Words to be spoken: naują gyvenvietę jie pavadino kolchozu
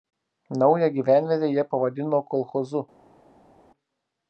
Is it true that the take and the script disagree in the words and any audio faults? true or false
false